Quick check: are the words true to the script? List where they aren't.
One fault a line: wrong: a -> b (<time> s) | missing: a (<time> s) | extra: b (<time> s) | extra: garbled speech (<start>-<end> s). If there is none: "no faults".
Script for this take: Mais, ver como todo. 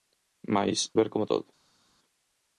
no faults